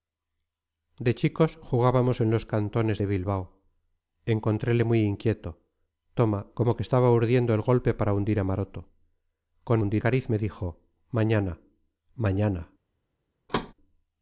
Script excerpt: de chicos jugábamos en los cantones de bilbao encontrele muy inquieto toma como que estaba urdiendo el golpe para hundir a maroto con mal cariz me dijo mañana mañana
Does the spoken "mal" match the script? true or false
false